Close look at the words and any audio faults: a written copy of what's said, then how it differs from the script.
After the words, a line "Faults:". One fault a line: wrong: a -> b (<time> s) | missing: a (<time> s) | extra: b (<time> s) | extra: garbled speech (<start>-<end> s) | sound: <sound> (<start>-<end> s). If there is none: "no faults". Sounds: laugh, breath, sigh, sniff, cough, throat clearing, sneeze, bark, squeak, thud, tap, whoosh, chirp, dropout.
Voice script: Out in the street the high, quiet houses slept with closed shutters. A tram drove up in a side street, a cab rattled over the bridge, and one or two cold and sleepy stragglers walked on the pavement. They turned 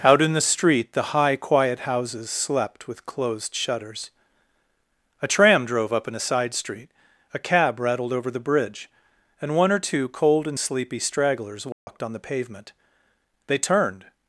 Out in the street the high, quiet houses slept with closed shutters. A tram drove up in a side street, a cab rattled over the bridge, and one or two cold and sleepy stragglers walked on the pavement. They turned
Faults:
sound: dropout (11.7-11.9 s)